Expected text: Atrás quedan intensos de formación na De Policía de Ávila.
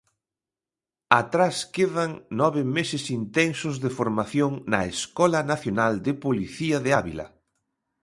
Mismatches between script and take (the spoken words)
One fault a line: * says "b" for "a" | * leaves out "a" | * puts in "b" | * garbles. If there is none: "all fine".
* puts in "nove meses"
* puts in "Escola Nacional"